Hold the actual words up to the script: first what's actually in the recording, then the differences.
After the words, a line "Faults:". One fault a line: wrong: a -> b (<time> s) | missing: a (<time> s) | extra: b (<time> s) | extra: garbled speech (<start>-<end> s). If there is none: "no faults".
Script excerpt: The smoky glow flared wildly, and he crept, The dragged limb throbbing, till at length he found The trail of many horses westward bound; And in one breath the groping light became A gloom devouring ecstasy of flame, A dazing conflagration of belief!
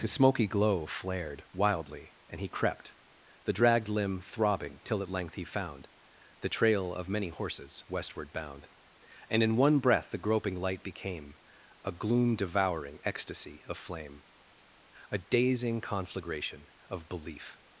His smoky glow flared wildly, and he crept, The dragged limb throbbing, till at length he found The trail of many horses westward bound; And in one breath the groping light became A gloom devouring ecstasy of flame, A dazing conflagration of belief!
Faults:
wrong: The -> His (0.0 s)